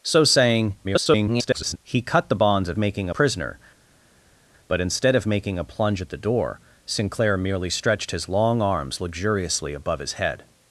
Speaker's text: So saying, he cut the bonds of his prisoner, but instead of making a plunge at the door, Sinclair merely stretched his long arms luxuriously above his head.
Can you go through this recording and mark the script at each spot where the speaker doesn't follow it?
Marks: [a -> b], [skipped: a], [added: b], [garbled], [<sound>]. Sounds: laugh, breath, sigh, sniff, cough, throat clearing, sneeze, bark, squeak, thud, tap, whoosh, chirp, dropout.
So saying, [garbled] he cut the bonds of [his -> making] prisoner, but instead of making a plunge at the door, Sinclair merely stretched his long arms luxuriously above his head.